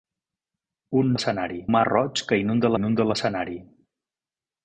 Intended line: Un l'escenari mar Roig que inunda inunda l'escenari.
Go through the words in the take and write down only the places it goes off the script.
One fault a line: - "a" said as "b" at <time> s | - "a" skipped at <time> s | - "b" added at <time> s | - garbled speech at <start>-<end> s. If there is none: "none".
none